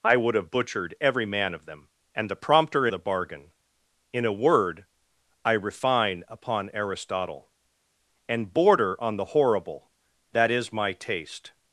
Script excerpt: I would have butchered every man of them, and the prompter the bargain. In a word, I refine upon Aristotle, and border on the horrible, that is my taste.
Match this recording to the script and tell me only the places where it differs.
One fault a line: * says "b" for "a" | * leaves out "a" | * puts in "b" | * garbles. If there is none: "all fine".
all fine